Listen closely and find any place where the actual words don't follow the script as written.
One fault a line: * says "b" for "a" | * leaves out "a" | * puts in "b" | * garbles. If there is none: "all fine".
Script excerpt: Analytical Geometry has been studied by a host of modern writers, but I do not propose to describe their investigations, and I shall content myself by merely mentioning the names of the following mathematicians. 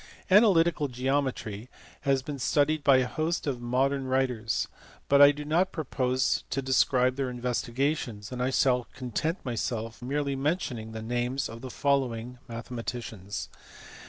* leaves out "by"